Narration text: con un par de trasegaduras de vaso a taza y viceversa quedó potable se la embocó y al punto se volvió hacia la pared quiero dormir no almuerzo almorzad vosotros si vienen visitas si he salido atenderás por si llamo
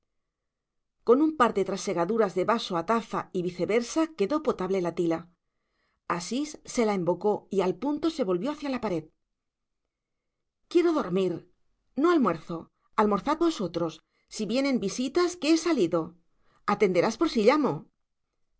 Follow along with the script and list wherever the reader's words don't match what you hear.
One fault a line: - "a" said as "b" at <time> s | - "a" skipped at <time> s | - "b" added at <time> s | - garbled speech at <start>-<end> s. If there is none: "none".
- "la tila asís" added at 4.8 s
- "si" said as "que" at 15.4 s